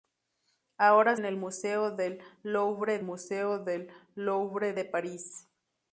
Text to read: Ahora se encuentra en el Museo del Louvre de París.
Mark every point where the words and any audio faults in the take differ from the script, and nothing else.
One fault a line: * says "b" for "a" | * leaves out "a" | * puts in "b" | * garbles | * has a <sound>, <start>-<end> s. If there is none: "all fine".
* says "en el Museo del Louvre" for "se encuentra en el"